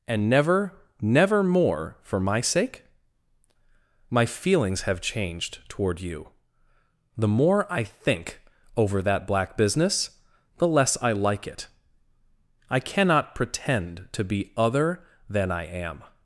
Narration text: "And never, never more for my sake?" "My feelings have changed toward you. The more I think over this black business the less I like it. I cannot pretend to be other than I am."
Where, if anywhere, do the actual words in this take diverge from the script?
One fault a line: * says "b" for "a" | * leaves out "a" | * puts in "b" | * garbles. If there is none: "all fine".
* says "that" for "this"